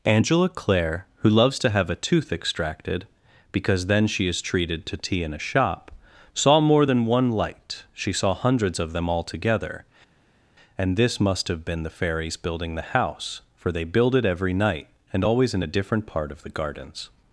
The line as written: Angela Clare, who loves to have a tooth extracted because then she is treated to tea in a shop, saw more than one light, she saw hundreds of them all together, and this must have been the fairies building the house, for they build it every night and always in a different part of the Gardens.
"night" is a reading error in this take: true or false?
false